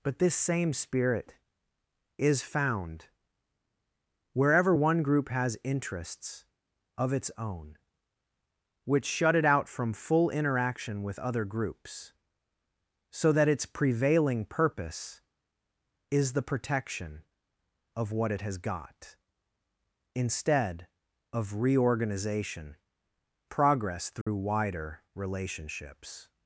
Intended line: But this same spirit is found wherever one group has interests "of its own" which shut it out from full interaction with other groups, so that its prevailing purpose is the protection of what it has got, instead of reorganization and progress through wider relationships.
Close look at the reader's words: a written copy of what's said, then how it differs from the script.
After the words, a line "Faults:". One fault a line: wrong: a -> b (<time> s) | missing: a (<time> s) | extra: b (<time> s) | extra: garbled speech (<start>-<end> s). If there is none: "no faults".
But this same spirit is found wherever one group has interests "of its own" which shut it out from full interaction with other groups, so that its prevailing purpose is the protection of what it has got, instead of reorganization progress through wider relationships.
Faults:
missing: and (22.8 s)